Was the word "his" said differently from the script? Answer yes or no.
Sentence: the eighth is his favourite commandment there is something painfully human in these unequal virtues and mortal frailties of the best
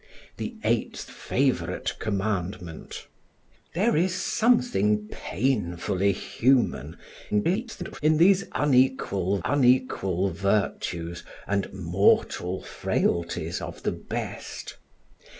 yes